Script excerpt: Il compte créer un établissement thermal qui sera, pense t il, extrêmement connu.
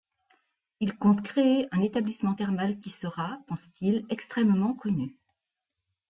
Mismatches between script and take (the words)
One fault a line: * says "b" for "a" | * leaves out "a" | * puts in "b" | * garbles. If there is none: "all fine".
all fine